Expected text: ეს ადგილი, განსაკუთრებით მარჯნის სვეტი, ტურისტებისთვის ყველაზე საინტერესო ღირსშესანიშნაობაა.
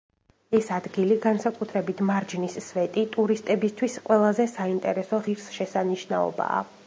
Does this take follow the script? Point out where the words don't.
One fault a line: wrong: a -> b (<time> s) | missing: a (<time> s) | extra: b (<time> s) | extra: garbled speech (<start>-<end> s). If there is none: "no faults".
no faults